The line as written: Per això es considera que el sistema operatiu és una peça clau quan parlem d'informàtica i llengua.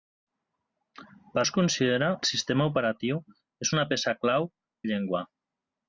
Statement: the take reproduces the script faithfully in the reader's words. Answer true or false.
false